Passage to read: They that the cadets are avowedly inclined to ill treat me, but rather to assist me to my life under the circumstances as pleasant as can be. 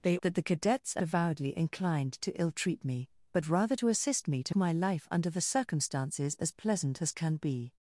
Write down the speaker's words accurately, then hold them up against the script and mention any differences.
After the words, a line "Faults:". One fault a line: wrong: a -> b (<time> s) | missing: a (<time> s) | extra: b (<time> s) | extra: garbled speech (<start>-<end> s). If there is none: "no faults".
They that the cadets are avowedly inclined to ill treat me, but rather to assist me to my life under the circumstances as pleasant as can be.
Faults:
no faults